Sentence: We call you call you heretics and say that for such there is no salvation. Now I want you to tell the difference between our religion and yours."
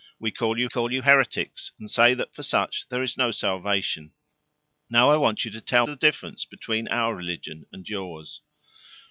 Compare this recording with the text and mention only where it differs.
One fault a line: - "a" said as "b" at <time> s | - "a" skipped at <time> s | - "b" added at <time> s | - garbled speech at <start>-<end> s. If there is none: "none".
none